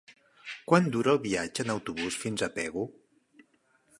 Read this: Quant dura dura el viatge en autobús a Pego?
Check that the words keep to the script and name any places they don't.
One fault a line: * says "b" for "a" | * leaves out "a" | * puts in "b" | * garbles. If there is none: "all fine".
* leaves out "dura"
* puts in "fins"